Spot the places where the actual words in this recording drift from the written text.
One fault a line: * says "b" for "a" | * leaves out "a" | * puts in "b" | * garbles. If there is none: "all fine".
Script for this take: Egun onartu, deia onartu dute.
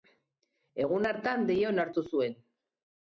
* says "hartan" for "onartu"
* says "zuen" for "dute"